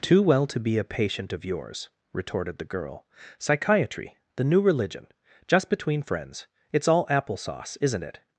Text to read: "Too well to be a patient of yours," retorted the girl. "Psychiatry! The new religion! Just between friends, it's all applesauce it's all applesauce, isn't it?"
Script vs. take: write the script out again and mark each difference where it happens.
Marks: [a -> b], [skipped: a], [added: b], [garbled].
"Too well to be a patient of yours," retorted the girl. "Psychiatry! The new religion! Just between friends, it's all applesauce [skipped: it's all applesauce,] isn't it?"